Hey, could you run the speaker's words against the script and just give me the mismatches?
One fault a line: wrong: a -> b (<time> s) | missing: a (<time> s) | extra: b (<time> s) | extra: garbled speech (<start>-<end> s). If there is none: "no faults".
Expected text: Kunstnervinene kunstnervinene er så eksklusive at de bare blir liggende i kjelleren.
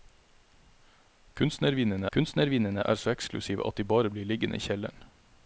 no faults